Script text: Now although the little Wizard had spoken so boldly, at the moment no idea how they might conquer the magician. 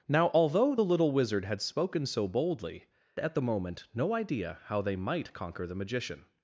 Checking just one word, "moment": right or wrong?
right